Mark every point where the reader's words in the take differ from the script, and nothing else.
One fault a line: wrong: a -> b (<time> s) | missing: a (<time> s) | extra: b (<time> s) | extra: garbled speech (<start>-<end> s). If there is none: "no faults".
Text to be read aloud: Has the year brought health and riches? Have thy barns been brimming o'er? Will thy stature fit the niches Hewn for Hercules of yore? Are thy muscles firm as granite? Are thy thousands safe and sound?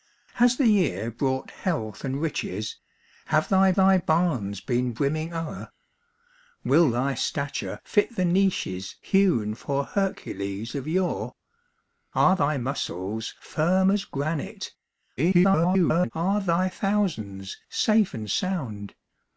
extra: thy (3.8 s)
extra: garbled speech (15.2-16.1 s)